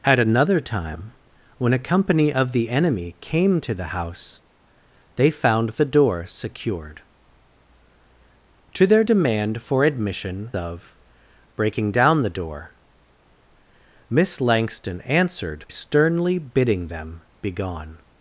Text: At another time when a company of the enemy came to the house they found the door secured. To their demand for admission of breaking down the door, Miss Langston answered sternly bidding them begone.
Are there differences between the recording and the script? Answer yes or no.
no